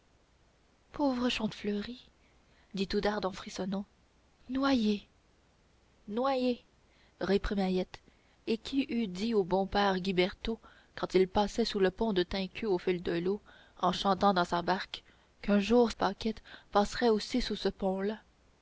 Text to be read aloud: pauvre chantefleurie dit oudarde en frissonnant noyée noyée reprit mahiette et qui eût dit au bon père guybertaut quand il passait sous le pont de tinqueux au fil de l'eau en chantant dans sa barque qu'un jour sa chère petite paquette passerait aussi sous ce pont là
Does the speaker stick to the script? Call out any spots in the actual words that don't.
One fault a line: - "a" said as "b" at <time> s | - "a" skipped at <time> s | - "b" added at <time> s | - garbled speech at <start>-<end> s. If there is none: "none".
- "sa chère petite" skipped at 15.9 s